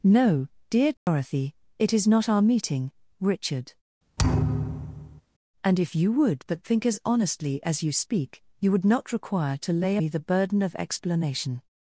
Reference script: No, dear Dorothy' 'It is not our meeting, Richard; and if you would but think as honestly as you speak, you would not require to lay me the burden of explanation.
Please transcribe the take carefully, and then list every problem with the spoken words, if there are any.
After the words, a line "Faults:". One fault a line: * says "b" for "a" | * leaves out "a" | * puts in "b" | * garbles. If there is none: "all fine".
No, dear Dorothy' 'It is not our meeting, Richard; and if you would but think as honestly as you speak, you would not require to lay me the burden of explanation.
Faults:
all fine